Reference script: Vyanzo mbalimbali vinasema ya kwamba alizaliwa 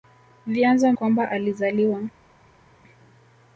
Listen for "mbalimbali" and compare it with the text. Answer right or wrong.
wrong